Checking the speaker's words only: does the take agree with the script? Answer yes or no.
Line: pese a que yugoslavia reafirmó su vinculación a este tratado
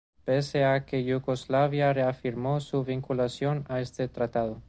yes